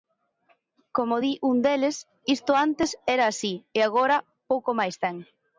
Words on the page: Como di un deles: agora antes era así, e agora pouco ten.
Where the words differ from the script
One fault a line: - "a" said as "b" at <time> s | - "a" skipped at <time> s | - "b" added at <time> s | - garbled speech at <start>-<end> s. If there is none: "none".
- "agora" said as "isto" at 2.4 s
- "máis" added at 4.8 s